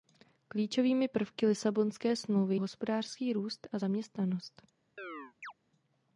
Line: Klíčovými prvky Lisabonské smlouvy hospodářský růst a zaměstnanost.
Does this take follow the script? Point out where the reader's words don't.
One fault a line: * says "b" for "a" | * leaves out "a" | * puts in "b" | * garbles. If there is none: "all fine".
all fine